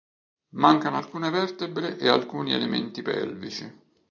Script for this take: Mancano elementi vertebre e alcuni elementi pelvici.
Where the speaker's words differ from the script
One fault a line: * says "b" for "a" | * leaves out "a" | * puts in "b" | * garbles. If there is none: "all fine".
* says "alcune" for "elementi"